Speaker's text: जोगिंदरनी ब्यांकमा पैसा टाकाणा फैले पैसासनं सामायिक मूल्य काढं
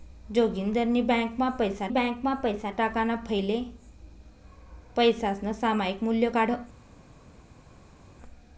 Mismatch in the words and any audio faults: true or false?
true